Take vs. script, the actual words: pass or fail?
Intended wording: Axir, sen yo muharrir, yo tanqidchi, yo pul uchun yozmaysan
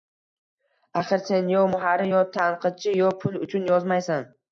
pass